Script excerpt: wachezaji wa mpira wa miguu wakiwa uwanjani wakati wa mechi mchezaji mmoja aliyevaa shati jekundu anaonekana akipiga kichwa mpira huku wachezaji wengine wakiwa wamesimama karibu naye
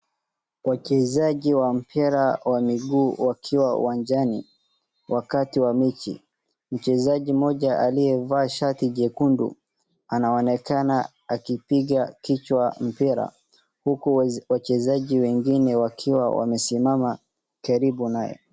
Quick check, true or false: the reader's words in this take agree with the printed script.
true